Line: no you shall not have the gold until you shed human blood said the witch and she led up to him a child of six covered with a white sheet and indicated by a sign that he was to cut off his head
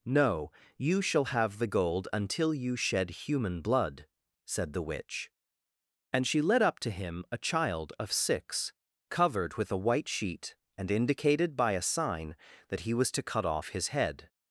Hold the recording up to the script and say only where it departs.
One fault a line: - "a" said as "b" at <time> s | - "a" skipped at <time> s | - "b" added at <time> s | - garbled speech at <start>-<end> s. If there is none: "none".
- "not" skipped at 1.2 s